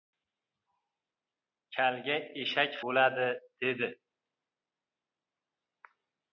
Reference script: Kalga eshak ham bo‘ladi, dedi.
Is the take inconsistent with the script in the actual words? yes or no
yes